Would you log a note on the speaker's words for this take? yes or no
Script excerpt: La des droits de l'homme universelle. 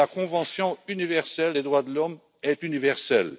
yes